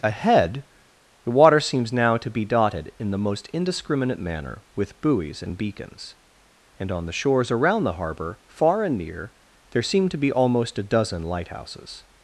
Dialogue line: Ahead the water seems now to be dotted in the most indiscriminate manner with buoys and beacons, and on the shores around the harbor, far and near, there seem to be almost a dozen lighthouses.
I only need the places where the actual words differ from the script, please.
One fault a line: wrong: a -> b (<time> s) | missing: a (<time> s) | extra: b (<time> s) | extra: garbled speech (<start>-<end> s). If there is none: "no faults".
no faults